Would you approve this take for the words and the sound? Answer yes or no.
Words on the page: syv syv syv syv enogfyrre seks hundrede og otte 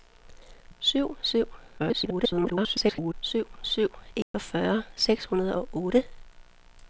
no